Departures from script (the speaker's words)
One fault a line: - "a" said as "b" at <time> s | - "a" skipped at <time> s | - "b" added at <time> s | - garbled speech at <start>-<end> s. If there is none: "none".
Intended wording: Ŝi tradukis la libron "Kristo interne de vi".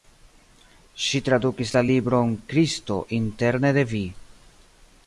none